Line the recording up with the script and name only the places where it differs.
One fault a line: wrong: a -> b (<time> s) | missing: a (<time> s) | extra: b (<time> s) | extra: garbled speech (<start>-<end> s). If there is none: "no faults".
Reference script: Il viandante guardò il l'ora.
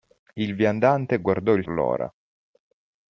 no faults